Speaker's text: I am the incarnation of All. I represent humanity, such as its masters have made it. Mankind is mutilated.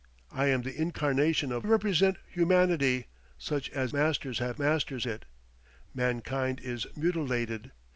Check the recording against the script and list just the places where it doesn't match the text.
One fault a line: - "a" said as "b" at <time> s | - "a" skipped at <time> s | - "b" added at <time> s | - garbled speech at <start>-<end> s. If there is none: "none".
- "All I" skipped at 1.7 s
- "its" skipped at 3.9 s
- "made" said as "masters" at 4.6 s